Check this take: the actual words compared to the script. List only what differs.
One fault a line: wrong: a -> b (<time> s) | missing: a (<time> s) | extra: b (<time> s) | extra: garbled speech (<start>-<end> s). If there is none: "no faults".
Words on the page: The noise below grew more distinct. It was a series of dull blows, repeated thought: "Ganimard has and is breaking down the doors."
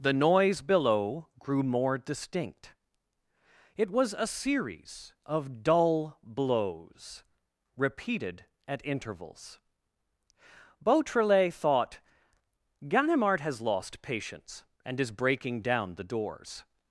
extra: at intervals Beautrelet (8.7 s)
extra: lost patience (13.6 s)